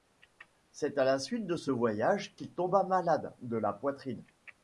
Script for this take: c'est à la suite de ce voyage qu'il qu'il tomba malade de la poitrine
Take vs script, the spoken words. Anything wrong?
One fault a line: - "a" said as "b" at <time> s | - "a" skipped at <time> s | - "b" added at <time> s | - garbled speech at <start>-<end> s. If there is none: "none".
- "qu'il" skipped at 2.5 s